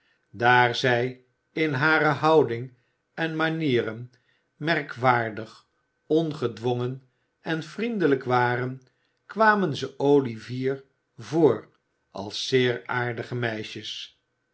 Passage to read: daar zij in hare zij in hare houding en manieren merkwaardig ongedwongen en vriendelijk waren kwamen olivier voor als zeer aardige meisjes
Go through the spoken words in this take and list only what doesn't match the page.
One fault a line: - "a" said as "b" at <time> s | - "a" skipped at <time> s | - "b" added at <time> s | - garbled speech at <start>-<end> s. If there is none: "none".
- "zij in hare" skipped at 2.0 s
- "ze" added at 9.8 s